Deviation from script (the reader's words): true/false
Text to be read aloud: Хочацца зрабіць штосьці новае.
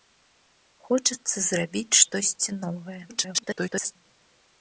true